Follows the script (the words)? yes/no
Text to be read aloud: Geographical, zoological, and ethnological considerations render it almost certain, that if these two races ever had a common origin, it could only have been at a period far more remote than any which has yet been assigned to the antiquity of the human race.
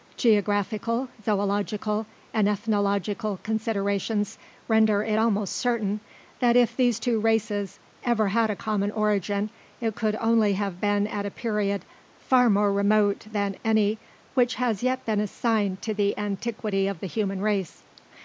yes